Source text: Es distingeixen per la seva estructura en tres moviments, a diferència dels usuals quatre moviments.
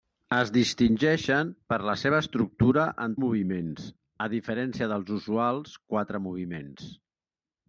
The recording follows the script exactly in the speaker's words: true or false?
false